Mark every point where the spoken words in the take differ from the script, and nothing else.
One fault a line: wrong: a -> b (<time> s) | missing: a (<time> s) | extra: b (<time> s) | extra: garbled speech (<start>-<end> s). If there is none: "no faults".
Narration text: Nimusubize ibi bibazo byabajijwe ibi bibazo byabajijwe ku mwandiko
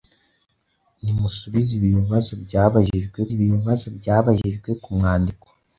no faults